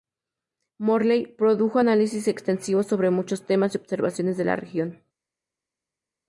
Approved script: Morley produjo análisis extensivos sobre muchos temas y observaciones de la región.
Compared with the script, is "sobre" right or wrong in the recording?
right